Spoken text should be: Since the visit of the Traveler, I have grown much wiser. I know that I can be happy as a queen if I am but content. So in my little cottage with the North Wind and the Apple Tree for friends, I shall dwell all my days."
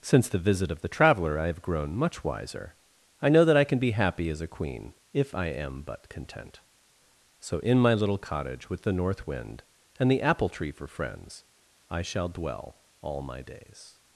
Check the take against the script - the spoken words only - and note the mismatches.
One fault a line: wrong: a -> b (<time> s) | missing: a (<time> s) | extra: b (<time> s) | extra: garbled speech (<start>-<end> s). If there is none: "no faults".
no faults